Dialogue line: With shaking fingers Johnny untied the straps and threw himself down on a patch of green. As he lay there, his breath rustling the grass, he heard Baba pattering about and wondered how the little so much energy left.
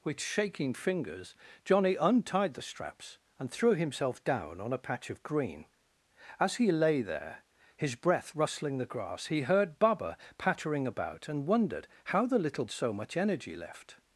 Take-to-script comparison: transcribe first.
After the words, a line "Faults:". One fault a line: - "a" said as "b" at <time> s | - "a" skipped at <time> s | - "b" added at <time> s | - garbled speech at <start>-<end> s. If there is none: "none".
With shaking fingers Johnny untied the straps and threw himself down on a patch of green. As he lay there, his breath rustling the grass, he heard Baba pattering about and wondered how the little so much energy left.
Faults:
none